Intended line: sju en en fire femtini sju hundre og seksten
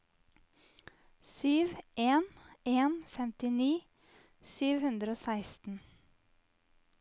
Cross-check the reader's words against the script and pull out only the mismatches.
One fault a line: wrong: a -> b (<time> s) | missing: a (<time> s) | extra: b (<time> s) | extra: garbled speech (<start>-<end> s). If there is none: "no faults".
missing: fire (2.9 s)